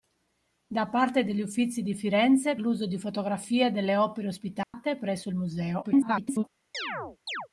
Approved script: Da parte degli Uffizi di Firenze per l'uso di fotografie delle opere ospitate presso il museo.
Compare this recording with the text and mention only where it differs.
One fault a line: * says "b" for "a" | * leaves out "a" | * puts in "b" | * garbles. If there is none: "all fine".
* leaves out "per"
* garbles